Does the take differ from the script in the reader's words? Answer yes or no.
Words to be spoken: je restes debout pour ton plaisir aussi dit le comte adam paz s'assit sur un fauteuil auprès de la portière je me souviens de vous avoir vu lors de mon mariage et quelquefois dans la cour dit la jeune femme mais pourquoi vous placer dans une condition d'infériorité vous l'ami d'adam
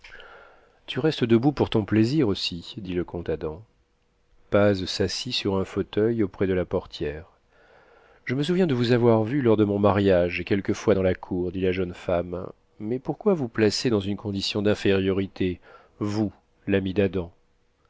yes